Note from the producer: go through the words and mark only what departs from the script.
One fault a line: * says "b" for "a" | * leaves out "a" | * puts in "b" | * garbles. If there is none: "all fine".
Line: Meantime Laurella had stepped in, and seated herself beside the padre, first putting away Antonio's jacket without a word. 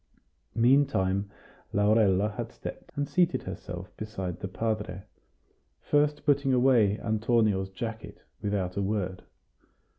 * leaves out "in"